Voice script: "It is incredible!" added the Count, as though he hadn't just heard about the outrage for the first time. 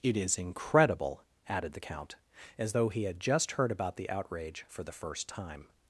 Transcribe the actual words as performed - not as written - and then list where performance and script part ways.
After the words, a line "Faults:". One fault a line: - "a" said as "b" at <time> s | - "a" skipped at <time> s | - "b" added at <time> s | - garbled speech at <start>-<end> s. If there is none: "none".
"It is incredible!" added the Count, as though he had just heard about the outrage for the first time.
Faults:
- "hadn't" said as "had" at 3.0 s